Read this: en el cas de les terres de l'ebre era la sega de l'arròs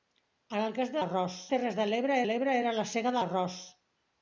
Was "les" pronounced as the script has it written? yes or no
no